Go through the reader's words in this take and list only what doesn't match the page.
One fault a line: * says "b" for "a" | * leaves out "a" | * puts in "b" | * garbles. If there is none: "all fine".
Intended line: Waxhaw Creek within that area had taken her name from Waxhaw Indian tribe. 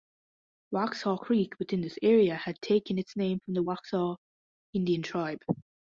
* says "this" for "that"
* says "its" for "her"
* puts in "the"